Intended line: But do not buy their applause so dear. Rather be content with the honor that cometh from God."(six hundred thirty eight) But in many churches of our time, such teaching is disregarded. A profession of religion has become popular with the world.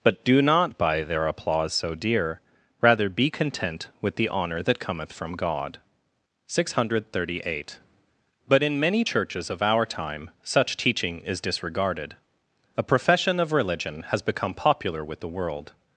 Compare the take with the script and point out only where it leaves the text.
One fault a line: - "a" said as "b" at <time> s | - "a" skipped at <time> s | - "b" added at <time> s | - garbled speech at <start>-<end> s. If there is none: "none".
none